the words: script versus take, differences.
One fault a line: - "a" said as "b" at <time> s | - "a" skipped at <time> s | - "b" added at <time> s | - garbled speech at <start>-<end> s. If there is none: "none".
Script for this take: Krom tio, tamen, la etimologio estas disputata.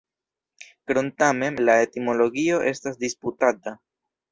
- "tio" skipped at 1.1 s